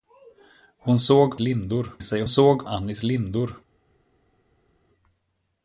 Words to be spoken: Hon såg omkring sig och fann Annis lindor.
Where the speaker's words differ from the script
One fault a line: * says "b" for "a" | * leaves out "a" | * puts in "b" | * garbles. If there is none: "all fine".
* says "lindor" for "omkring"
* says "såg" for "fann"